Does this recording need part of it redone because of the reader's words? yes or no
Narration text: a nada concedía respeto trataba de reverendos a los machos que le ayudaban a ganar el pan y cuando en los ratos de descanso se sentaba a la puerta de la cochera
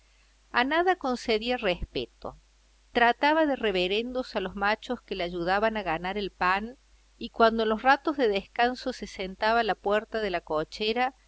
no